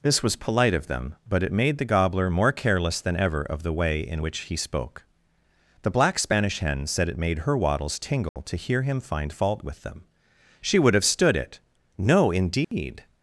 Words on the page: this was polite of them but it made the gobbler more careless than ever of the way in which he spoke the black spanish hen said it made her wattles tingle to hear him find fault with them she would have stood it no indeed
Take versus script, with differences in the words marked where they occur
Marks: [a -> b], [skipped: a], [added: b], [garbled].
this was polite of them but it made the gobbler more careless than ever of the way in which he spoke the black spanish hen said it made her wattles tingle to hear him find fault with them she would have stood it no indeed